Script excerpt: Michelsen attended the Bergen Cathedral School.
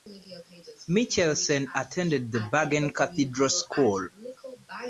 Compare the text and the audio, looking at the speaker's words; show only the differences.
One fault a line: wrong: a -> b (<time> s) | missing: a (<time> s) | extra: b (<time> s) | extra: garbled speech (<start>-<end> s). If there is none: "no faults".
no faults